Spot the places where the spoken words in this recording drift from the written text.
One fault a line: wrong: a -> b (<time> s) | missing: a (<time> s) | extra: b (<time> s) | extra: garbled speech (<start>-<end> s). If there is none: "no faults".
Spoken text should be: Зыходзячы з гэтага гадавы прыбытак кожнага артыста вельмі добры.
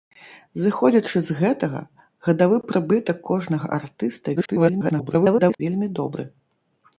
extra: garbled speech (4.4-5.6 s)